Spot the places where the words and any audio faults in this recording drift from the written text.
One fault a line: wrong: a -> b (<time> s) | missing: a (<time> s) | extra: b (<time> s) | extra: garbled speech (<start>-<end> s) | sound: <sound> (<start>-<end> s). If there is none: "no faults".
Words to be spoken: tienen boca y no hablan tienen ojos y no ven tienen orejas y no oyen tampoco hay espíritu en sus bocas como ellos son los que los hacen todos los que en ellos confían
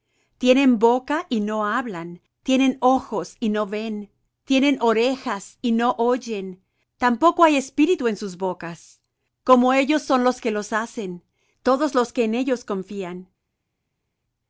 no faults